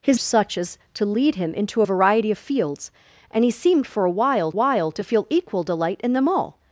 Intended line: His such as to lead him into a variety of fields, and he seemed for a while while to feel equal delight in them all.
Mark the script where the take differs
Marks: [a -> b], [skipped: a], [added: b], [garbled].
His such as to lead him into a variety of fields, and he seemed for a while while to feel equal delight in them all.